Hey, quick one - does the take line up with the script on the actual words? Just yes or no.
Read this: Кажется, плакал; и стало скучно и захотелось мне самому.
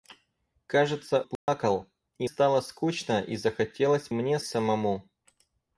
yes